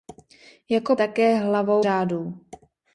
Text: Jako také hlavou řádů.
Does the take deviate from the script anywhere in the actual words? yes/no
no